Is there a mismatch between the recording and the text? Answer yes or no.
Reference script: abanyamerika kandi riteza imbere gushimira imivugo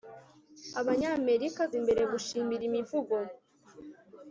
yes